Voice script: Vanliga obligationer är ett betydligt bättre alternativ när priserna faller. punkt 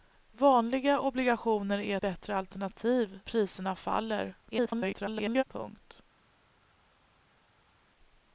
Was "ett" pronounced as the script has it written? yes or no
no